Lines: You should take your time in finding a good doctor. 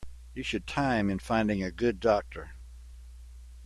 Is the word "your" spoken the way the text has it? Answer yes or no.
no